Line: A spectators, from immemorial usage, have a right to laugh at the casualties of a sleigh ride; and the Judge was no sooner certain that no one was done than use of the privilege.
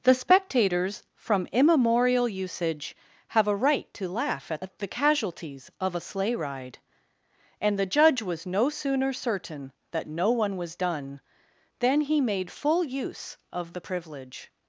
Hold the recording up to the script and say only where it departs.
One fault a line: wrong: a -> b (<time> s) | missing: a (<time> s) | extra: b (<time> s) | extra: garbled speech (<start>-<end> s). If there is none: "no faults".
wrong: A -> The (0.0 s)
extra: he made full (12.0 s)